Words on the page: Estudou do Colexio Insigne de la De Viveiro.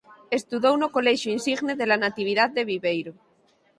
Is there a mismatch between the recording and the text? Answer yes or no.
yes